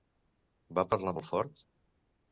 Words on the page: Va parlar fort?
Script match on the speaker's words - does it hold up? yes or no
no